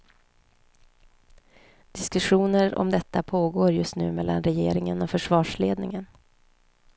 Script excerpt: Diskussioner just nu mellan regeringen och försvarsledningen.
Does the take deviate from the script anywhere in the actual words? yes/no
yes